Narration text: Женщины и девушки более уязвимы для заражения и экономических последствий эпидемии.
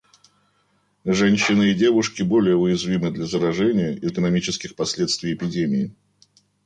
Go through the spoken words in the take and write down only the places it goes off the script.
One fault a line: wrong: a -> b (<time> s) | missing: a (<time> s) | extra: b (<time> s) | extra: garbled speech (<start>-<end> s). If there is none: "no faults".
no faults